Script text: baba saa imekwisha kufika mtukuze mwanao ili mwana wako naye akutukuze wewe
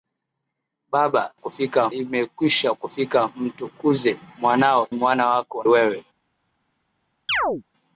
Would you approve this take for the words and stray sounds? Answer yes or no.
no